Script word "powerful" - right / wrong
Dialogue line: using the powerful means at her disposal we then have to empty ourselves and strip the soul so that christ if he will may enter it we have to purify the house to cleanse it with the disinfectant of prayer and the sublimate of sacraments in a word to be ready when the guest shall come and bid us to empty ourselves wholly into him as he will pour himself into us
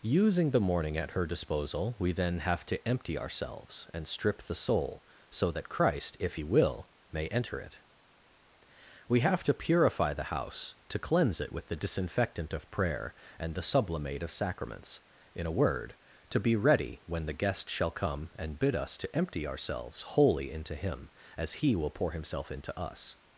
wrong